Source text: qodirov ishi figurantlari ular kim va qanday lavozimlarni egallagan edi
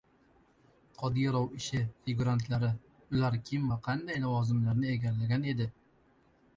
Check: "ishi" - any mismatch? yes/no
no